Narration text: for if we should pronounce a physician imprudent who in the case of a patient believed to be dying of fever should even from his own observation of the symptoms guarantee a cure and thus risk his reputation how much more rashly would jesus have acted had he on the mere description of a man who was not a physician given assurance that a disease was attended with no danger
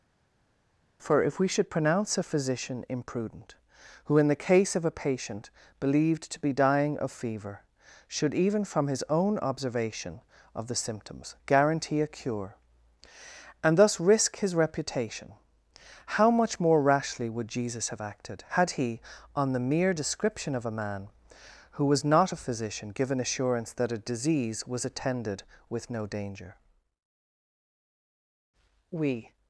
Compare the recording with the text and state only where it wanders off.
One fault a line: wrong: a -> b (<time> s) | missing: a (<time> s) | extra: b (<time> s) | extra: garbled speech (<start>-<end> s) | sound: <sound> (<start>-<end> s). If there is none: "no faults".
extra: we (28.9 s)